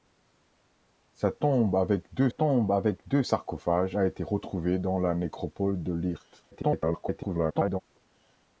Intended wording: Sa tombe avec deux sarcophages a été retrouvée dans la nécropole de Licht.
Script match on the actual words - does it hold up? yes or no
no